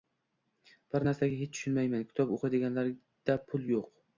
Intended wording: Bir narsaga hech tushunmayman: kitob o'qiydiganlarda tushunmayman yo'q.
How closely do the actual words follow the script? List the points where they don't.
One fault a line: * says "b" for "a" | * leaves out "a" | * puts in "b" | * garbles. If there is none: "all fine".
* says "pul" for "tushunmayman"